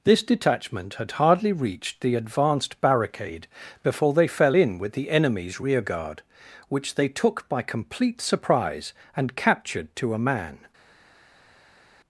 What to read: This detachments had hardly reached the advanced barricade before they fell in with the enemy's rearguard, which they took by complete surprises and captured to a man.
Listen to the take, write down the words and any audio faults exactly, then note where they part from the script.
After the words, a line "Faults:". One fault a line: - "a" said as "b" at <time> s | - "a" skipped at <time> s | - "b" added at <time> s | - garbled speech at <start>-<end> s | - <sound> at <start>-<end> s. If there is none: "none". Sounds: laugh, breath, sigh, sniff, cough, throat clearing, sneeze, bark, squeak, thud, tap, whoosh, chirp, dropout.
This detachment had hardly reached the advanced barricade before they fell in with the enemy's rearguard, which they took by complete surprise and captured to a man.
Faults:
- "detachments" said as "detachment" at 0.2 s
- "surprises" said as "surprise" at 8.2 s